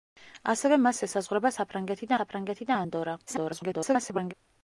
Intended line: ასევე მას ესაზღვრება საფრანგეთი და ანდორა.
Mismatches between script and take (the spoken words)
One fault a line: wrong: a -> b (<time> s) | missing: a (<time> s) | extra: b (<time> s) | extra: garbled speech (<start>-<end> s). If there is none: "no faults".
extra: საფრანგეთი (2.2 s)
extra: garbled speech (3.3-4.3 s)